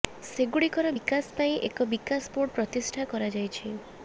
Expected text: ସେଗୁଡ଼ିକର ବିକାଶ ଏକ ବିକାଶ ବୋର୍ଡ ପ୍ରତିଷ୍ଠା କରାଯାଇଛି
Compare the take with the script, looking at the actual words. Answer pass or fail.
fail